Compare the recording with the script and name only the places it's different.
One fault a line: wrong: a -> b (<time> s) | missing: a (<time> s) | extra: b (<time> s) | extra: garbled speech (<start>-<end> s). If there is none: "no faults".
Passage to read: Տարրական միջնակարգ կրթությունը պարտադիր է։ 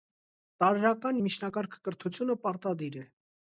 no faults